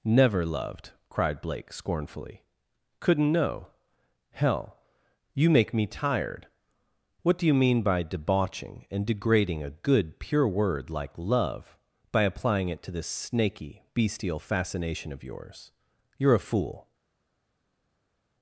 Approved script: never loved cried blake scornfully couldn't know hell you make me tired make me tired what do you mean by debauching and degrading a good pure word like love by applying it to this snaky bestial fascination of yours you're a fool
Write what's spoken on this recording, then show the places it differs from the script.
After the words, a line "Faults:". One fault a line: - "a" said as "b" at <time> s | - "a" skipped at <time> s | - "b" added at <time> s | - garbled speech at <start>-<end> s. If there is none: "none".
never loved cried blake scornfully couldn't know hell you make me tired what do you mean by debauching and degrading a good pure word like love by applying it to this snaky bestial fascination of yours you're a fool
Faults:
- "make me tired" skipped at 6.5 s